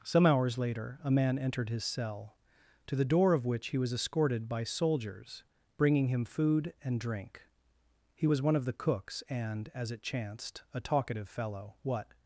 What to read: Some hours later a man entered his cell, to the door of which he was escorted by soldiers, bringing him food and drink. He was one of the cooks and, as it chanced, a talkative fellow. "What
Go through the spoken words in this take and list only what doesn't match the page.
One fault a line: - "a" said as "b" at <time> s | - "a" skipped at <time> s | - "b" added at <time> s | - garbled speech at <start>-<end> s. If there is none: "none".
none